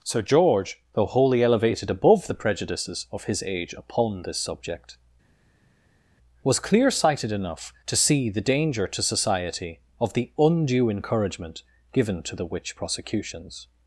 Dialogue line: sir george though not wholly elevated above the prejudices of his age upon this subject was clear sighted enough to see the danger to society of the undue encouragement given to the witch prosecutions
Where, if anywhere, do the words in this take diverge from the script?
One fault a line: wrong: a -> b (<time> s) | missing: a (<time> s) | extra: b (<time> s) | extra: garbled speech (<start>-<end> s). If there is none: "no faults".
missing: not (1.1 s)